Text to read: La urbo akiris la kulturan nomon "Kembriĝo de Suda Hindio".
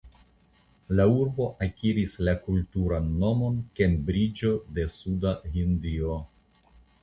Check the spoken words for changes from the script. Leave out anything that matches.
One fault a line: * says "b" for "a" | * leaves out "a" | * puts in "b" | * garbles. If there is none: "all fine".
all fine